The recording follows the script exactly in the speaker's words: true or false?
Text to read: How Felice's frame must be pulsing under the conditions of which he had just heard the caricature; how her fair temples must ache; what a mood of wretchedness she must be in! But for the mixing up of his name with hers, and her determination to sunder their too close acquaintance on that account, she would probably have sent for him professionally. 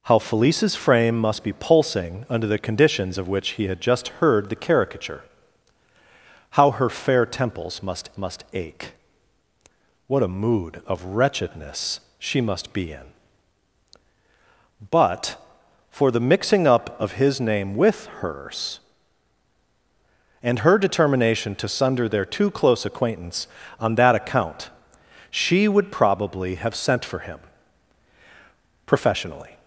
false